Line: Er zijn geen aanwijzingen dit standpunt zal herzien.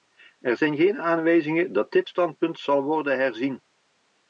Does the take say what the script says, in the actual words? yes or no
no